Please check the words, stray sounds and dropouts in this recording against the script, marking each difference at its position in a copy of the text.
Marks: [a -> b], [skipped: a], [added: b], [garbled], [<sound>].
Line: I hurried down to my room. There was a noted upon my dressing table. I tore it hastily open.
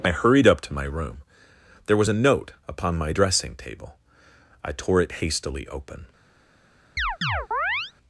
I hurried [down -> up] to my room. There was a [noted -> note] upon my dressing table. I tore it hastily open. [chirp]